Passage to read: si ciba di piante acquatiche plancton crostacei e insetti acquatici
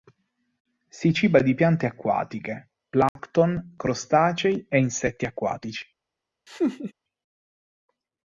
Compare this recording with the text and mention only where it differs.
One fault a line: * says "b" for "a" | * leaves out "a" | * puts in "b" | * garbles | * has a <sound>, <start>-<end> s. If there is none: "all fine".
* has a dropout, 3.1-3.2 s
* has a laugh, 6.5-6.9 s